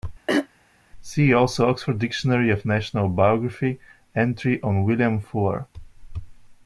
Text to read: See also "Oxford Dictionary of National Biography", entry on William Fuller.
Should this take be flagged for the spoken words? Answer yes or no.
no